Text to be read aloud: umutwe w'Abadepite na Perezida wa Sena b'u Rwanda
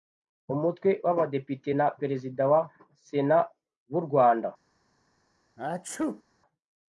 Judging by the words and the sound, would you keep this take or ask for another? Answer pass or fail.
fail